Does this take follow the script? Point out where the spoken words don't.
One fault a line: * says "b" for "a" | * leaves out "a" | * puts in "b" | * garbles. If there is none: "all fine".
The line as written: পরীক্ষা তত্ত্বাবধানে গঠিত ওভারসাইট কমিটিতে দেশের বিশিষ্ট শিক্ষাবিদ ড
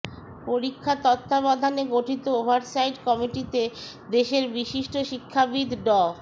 all fine